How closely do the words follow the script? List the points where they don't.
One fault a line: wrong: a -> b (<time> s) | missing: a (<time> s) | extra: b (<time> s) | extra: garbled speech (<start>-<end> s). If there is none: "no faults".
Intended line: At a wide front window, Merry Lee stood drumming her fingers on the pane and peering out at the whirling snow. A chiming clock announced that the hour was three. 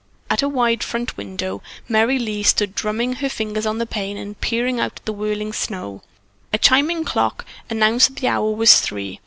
no faults